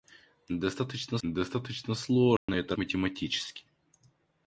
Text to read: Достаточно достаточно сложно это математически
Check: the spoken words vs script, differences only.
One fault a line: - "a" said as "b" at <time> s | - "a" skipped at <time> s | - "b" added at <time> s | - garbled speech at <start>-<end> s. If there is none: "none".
none